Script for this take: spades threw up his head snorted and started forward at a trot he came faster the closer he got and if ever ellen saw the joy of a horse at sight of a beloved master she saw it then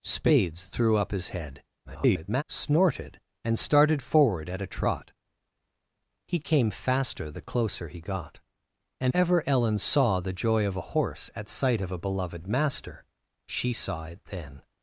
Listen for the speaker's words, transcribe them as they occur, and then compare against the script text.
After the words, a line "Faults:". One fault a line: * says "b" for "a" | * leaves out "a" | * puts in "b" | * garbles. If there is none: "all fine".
spades threw up his head [garbled] snorted and started forward at a trot he came faster the closer he got and ever ellen saw the joy of a horse at sight of a beloved master she saw it then
Faults:
* garbles
* leaves out "if"